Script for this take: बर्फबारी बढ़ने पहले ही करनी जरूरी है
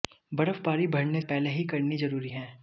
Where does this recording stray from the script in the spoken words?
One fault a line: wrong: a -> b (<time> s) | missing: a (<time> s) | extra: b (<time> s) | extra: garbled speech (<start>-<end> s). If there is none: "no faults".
no faults